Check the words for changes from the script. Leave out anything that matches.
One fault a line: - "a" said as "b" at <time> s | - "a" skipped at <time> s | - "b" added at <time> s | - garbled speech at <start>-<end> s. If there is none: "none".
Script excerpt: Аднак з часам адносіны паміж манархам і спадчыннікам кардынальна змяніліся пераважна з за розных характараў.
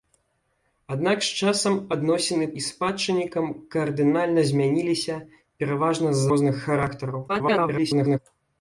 - "паміж манархам" skipped at 2.5 s
- "за" skipped at 6.3 s
- garbled speech at 7.3-8.2 s